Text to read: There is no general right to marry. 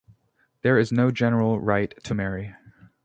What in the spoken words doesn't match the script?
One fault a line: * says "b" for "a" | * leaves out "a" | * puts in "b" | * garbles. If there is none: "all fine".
all fine